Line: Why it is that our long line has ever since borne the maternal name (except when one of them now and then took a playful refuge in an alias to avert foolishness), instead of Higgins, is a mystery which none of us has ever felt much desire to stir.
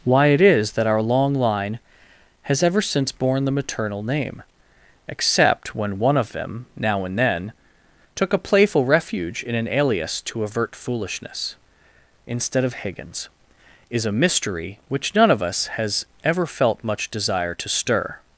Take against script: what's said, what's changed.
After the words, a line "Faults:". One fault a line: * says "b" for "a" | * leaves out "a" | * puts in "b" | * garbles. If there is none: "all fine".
Why it is that our long line has ever since borne the maternal name (except when one of them now and then took a playful refuge in an alias to avert foolishness), instead of Higgins, is a mystery which none of us has ever felt much desire to stir.
Faults:
all fine